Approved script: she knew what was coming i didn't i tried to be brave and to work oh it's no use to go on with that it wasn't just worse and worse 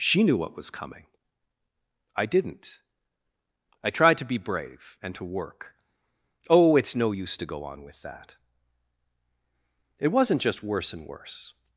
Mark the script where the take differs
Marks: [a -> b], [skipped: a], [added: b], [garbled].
she knew what was coming i didn't i tried to be brave and to work oh it's no use to go on with that it wasn't just worse and worse